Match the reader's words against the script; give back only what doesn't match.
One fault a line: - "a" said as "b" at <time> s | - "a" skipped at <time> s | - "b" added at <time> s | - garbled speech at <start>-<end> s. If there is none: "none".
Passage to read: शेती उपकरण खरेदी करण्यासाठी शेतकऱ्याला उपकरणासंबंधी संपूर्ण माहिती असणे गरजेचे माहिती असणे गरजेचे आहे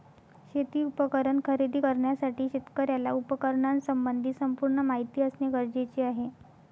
- "माहिती असणे गरजेचे" skipped at 6.0 s